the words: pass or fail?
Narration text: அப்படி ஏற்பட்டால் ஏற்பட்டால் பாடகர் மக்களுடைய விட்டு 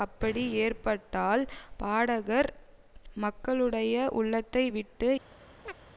fail